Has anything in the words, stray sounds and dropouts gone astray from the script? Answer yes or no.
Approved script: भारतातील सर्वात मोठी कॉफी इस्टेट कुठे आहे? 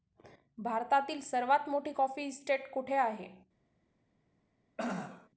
yes